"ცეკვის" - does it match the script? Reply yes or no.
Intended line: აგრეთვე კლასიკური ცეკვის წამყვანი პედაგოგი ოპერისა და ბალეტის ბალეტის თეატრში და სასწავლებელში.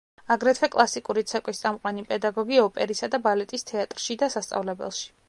yes